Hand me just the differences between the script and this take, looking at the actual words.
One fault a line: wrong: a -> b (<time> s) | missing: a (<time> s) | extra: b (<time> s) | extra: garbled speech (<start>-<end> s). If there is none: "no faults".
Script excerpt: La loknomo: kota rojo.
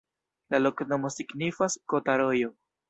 extra: signifas (1.2 s)